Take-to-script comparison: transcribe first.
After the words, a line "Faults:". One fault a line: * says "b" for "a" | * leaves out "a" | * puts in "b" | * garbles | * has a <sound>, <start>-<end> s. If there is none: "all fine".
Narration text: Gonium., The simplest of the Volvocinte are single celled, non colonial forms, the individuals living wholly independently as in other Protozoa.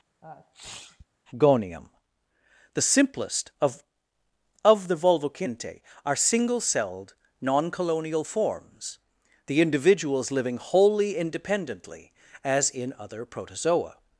Gonium., The simplest of of the Volvocinte are single celled, non colonial forms, the individuals living wholly independently as in other Protozoa.
Faults:
* has a sneeze, 0.2-1.1 s
* puts in "of"